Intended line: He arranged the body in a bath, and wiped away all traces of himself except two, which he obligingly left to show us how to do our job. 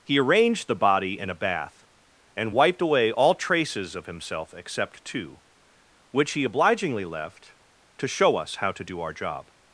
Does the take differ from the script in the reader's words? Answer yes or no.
no